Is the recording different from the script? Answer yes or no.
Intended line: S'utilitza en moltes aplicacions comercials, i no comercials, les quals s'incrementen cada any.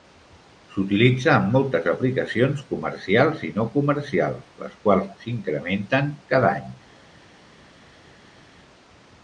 no